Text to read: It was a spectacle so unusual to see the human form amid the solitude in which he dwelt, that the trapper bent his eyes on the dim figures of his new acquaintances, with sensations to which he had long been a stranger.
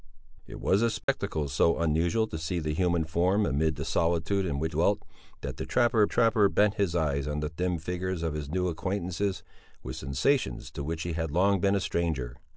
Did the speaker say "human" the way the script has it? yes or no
yes